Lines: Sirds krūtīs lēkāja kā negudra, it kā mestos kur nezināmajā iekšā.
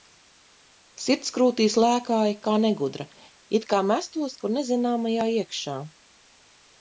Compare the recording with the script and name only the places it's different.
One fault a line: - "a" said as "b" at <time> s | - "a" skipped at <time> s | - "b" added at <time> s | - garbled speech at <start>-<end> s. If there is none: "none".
none